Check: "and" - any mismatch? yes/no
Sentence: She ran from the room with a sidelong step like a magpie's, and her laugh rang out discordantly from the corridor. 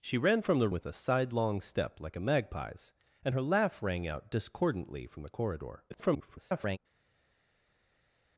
no